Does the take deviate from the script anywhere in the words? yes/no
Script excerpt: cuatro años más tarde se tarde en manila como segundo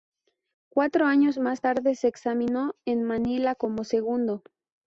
yes